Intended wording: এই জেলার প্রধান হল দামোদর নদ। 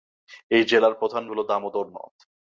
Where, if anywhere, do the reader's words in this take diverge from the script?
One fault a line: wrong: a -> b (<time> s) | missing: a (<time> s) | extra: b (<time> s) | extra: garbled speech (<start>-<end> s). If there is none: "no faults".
no faults